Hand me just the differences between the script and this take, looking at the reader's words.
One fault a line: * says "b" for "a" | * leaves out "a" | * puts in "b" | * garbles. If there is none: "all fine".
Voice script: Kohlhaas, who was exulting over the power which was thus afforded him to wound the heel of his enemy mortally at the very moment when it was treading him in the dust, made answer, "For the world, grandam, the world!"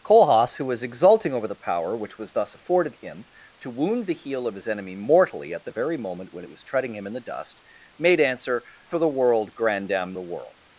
all fine